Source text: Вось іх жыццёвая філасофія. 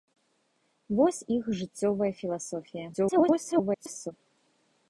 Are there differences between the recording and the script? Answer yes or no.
yes